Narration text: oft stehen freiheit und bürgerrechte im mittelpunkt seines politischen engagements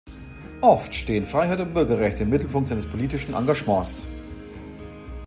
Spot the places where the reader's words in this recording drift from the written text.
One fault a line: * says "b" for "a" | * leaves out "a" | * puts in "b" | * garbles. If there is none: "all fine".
all fine